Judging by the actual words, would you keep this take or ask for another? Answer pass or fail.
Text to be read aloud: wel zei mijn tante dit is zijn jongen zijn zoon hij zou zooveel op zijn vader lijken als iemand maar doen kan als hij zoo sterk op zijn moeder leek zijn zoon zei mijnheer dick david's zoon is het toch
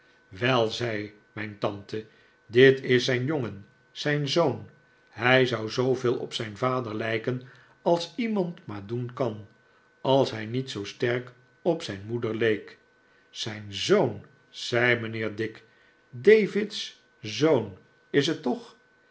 fail